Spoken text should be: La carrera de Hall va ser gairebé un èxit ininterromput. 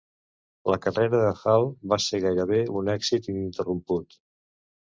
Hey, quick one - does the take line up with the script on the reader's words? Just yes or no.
yes